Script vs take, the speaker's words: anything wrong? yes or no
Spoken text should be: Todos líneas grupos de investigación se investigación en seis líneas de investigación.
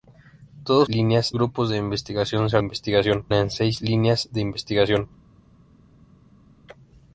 no